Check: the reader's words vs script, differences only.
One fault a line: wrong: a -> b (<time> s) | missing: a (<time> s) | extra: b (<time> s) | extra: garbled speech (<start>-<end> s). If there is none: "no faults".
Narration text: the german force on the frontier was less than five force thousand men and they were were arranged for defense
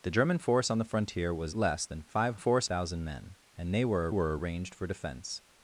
no faults